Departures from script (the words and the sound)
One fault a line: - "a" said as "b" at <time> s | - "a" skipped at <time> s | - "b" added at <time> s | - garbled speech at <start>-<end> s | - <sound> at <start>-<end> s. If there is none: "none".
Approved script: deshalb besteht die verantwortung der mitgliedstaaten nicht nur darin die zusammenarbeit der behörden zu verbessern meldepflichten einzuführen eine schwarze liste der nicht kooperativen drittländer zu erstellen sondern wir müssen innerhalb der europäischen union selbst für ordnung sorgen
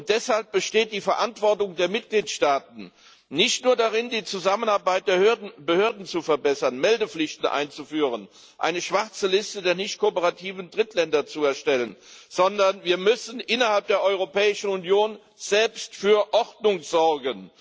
none